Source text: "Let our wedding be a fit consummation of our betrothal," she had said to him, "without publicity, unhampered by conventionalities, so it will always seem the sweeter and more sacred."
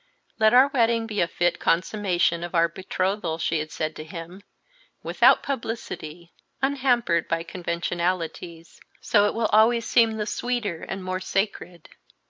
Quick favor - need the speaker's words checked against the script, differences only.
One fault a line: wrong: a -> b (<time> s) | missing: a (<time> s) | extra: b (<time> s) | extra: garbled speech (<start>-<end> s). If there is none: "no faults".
no faults